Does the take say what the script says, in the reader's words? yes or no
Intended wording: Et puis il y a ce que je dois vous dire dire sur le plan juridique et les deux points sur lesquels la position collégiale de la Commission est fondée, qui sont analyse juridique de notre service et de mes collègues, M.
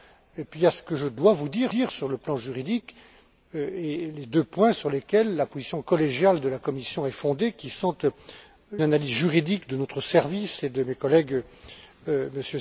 yes